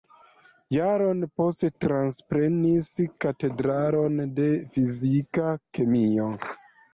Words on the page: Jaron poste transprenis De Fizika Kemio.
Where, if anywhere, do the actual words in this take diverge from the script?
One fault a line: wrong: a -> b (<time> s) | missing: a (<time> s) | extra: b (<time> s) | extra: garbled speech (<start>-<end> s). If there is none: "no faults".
extra: Katedron (3.2 s)